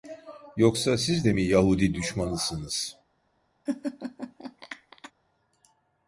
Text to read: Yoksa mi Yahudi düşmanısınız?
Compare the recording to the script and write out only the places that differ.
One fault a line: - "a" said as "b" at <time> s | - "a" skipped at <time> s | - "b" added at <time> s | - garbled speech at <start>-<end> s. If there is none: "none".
- "siz de" added at 1.0 s